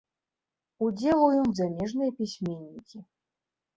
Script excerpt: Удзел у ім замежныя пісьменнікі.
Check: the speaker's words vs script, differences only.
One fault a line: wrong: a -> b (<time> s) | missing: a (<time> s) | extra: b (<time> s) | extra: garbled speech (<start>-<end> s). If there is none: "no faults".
no faults